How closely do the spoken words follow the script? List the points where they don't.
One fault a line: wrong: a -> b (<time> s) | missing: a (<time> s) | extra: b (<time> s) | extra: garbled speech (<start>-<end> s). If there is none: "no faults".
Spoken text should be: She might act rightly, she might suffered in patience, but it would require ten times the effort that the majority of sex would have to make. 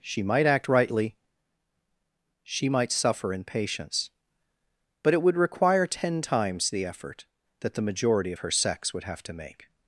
wrong: suffered -> suffer (2.9 s)
extra: her (8.4 s)